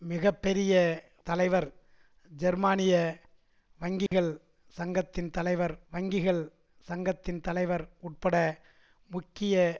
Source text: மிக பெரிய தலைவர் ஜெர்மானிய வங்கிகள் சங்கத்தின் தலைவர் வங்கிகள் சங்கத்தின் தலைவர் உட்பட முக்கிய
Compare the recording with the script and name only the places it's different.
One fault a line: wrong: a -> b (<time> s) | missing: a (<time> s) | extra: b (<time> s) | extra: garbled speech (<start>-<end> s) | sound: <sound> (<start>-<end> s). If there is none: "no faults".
sound: dropout (4.1-4.1 s)